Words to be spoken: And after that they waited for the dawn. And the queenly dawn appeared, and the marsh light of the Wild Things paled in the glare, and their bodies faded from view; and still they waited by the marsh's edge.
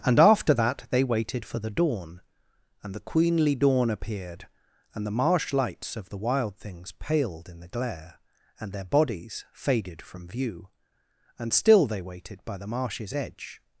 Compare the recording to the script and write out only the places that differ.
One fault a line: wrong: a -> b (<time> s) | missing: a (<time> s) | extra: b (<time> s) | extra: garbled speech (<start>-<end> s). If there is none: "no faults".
wrong: light -> lights (5.5 s)